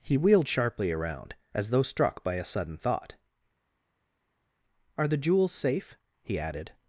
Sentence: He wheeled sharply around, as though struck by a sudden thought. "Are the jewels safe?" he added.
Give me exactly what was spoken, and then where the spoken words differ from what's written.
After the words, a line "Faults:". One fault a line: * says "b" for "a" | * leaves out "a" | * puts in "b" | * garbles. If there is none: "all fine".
He wheeled sharply around, as though struck by a sudden thought. "Are the jewels safe?" he added.
Faults:
all fine